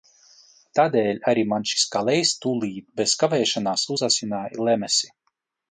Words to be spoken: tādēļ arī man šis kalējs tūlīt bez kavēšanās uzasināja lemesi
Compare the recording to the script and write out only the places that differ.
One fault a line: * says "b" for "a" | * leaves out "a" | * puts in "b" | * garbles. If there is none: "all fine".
all fine